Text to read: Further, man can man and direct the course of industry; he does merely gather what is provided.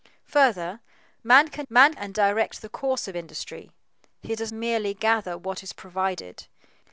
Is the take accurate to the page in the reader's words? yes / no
yes